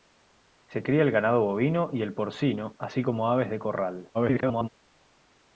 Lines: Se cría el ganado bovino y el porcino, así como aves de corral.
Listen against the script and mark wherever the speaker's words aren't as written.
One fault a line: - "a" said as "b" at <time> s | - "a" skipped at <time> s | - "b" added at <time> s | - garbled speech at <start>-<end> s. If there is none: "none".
- garbled speech at 4.1-4.7 s